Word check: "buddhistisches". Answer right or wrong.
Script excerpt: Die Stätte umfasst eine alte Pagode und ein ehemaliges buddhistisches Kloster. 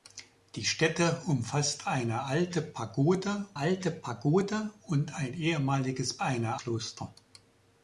wrong